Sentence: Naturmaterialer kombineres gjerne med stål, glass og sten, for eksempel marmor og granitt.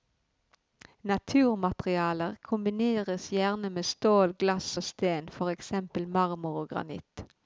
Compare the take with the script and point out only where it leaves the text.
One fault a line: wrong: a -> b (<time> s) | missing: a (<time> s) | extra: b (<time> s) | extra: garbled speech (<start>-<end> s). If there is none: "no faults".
no faults